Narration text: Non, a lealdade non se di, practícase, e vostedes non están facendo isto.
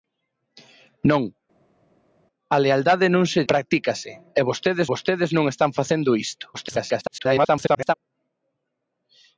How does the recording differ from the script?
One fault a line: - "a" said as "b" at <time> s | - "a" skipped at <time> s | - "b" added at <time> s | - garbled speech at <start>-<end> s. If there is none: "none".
- "di" skipped at 3.4 s
- "vostedes" added at 4.9 s
- garbled speech at 6.5-7.9 s